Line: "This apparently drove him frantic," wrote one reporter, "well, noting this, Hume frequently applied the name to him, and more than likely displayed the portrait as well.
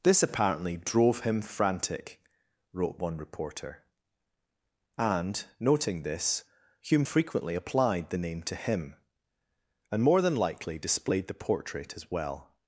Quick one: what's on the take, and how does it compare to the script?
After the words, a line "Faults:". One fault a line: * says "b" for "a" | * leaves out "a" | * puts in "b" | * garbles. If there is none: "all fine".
"This apparently drove him frantic," wrote one reporter, "and, noting this, Hume frequently applied the name to him, and more than likely displayed the portrait as well.
Faults:
* says "and" for "well"